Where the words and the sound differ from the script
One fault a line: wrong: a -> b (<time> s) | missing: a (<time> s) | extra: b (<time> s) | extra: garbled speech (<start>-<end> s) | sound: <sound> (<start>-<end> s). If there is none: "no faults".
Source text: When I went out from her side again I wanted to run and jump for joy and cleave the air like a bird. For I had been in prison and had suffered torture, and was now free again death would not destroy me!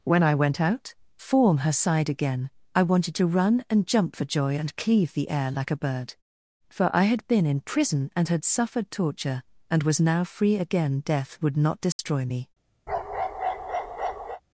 wrong: from -> form (1.1 s)
sound: dropout (11.9-12.0 s)
sound: bark (12.9-14.4 s)